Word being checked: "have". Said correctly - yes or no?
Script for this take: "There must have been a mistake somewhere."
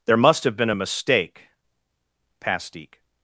yes